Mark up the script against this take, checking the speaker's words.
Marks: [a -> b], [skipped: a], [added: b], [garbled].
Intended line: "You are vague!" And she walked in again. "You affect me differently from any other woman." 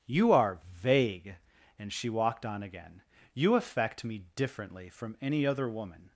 "You are vague!" And she walked [in -> on] again. "You affect me differently from any other woman."